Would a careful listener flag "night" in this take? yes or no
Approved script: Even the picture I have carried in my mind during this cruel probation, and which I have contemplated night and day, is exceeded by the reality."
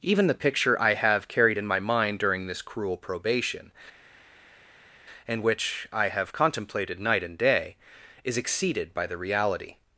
no